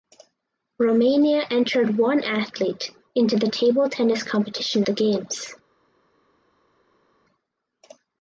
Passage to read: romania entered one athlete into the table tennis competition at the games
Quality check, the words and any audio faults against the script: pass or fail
fail